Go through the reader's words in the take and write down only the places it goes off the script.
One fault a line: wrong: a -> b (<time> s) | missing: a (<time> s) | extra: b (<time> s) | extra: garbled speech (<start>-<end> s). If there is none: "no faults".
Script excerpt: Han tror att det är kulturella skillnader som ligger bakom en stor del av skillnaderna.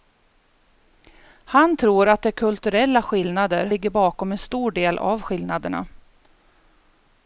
missing: som (3.7 s)